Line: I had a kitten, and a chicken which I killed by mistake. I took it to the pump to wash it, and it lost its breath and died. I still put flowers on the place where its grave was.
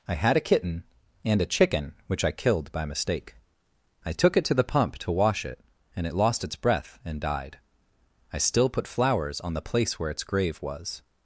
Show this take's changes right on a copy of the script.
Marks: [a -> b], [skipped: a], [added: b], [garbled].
I had a kitten, and a chicken which I killed by mistake. I took it to the pump to wash it, and it lost its breath and died. I still put flowers on the place where its grave was.